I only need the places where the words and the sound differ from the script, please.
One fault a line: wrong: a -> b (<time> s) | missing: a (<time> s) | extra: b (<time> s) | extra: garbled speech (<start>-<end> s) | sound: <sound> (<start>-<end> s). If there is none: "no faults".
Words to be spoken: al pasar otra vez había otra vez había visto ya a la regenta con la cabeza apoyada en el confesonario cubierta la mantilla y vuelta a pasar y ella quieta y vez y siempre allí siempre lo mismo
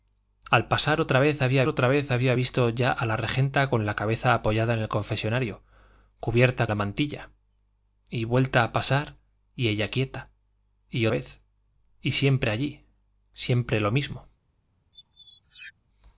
sound: squeak (14.9-15.7 s)